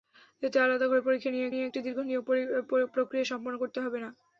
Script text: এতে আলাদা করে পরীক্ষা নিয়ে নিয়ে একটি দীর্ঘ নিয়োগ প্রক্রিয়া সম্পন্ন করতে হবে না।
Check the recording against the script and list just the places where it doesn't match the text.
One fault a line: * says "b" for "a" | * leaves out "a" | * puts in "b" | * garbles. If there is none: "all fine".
all fine